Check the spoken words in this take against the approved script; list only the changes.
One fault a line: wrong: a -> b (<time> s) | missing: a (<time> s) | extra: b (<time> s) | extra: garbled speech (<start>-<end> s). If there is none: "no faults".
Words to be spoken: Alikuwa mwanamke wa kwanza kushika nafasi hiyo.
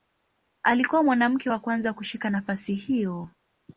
no faults